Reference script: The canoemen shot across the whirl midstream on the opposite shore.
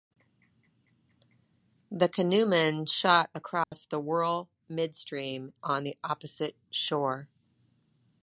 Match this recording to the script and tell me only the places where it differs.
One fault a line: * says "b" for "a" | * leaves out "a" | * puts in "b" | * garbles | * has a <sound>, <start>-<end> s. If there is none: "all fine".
* has a dropout, 3.6-3.7 s